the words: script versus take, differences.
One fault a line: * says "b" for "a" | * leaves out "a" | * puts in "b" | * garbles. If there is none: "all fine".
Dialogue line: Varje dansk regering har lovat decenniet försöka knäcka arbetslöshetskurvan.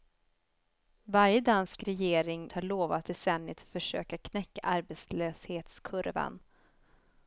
all fine